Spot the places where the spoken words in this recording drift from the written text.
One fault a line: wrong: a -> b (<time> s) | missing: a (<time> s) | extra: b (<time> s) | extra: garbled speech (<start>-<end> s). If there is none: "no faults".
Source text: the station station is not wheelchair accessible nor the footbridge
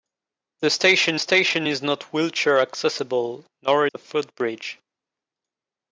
no faults